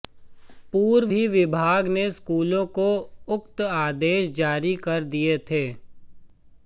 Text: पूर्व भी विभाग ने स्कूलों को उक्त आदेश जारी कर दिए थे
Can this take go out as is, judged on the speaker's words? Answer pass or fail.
pass